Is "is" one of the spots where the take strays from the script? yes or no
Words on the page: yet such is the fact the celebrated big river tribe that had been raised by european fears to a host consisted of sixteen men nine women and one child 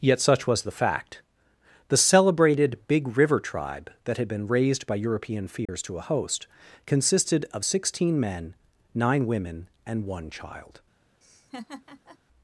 yes